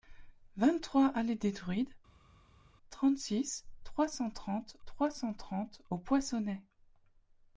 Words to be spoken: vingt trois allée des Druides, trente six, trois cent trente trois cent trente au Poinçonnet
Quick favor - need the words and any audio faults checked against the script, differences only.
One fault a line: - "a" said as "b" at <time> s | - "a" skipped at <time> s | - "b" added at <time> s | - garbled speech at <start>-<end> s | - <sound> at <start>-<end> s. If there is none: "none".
none